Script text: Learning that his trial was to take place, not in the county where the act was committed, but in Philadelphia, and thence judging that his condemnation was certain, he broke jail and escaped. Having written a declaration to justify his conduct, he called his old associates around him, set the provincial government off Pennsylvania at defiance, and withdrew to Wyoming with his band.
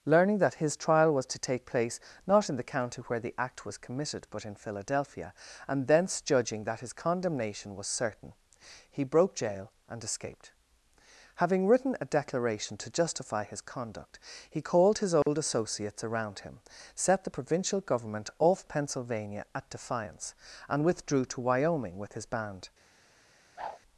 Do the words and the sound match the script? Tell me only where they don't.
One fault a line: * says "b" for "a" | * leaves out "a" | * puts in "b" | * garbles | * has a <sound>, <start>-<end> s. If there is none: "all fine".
* has a dropout, 15.2-15.3 s
* has a whoosh, 23.6-23.8 s